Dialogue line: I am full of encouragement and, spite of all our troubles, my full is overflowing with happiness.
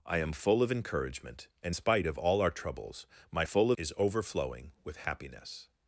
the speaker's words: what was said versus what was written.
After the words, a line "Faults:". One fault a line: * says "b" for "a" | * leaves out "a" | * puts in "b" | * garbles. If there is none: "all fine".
I am full of encouragement and, spite of all our troubles, my full is overflowing with happiness.
Faults:
all fine